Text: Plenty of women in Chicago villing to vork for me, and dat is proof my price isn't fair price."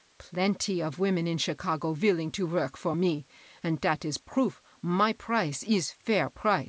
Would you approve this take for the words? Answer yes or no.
no